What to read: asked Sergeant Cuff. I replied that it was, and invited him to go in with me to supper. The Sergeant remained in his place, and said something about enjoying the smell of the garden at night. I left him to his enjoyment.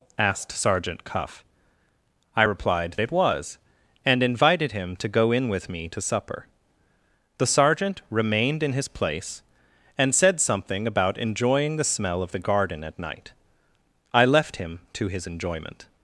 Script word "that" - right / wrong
wrong